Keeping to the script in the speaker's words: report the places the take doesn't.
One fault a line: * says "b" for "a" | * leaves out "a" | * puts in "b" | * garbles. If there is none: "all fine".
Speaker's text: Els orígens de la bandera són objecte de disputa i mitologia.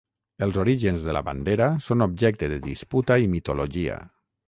all fine